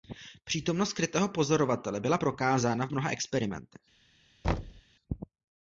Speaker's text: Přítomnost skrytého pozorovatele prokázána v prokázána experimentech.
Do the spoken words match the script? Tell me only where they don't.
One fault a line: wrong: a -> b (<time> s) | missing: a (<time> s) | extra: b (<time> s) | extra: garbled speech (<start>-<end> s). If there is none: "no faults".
extra: byla (2.0 s)
wrong: prokázána -> mnoha (2.9 s)